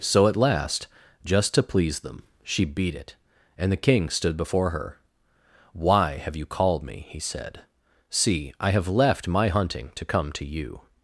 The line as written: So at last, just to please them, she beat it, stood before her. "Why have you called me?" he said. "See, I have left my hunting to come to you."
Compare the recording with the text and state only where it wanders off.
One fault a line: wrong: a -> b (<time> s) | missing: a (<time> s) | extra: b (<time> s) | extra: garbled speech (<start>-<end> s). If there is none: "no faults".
extra: and the King (3.5 s)